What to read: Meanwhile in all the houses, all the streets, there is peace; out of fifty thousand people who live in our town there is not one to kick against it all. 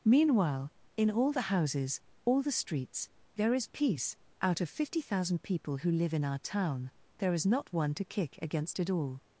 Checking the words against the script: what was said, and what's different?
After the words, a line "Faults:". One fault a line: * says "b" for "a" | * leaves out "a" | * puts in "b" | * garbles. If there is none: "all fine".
Meanwhile in all the houses, all the streets, there is peace; out of fifty thousand people who live in our town there is not one to kick against it all.
Faults:
all fine